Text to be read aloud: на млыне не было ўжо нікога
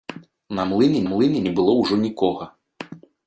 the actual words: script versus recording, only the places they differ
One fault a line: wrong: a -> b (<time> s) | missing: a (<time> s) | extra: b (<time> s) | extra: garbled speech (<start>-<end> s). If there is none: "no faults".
extra: млыне (1.1 s)